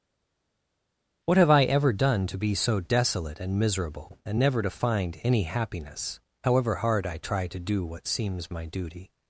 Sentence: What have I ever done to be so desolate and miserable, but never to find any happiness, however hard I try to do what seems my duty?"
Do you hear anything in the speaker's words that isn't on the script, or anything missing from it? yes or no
yes